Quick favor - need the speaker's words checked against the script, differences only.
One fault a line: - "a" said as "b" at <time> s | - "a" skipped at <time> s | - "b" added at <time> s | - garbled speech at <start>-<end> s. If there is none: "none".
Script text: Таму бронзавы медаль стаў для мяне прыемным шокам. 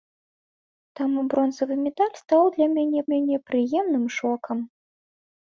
- "мяне" added at 3.1 s